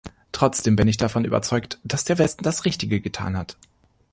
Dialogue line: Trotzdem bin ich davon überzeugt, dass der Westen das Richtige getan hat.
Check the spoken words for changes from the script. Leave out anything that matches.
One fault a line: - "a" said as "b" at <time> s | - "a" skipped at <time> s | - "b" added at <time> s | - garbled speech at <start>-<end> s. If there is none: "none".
none